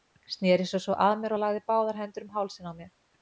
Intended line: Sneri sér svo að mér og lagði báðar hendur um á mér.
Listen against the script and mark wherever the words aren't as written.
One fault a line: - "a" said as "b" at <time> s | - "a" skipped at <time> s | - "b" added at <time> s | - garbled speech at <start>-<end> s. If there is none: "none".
- "hálsinn" added at 2.4 s